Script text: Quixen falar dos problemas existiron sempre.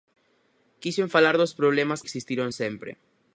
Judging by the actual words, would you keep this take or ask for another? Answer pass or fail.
pass